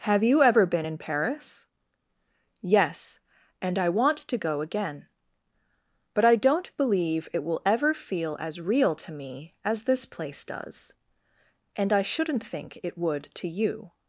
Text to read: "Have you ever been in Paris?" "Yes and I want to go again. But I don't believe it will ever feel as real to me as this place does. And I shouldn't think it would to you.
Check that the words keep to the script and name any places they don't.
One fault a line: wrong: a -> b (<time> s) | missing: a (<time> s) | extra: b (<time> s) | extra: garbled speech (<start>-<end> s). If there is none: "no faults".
no faults